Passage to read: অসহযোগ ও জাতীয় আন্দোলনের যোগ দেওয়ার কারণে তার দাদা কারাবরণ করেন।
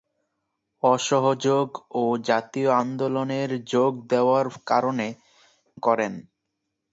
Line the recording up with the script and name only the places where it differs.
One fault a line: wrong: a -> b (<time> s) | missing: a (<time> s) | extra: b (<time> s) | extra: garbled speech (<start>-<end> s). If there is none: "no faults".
missing: তার দাদা কারাবরণ (5.1 s)